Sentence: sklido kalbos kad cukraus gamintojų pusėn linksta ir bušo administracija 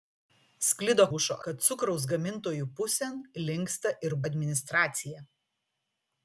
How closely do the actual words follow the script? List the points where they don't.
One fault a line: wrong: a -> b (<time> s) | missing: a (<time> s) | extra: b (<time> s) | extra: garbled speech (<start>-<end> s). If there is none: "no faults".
wrong: kalbos -> bušo (1.1 s)
missing: bušo (4.2 s)